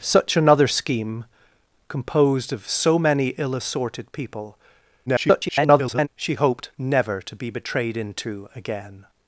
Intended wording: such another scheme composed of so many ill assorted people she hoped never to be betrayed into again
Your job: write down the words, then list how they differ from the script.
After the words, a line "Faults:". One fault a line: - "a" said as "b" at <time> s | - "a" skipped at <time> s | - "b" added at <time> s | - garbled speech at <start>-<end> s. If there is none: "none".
such another scheme composed of so many ill assorted people [garbled] she hoped never to be betrayed into again
Faults:
- garbled speech at 5.1-6.1 s